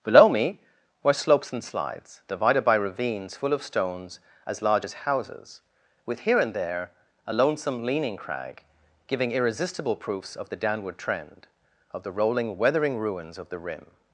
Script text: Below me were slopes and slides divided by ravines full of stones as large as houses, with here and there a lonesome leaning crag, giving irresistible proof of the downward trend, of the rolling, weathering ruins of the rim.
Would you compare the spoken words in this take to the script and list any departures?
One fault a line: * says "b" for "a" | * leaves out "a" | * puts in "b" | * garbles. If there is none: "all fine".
* says "proofs" for "proof"